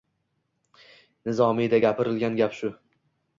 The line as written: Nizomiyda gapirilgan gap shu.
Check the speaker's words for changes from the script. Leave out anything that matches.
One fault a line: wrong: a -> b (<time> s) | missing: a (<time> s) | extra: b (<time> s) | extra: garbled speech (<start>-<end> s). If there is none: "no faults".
no faults